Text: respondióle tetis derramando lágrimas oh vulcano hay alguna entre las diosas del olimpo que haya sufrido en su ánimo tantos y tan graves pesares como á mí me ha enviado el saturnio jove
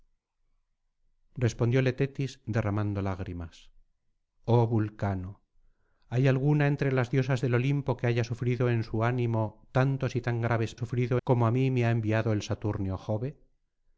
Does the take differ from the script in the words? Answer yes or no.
yes